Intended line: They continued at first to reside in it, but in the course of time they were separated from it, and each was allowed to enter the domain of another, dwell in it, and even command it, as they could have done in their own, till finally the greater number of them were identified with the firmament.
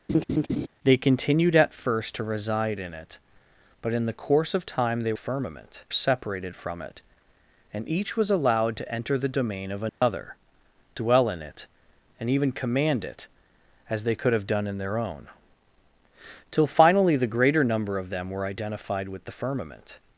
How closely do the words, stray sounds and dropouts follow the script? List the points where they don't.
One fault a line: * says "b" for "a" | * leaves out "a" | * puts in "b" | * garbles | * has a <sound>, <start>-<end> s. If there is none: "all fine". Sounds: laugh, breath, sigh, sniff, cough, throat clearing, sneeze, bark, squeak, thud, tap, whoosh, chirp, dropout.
* has a laugh, 0.1-0.7 s
* says "firmament" for "were"
* has a dropout, 9.9-10.0 s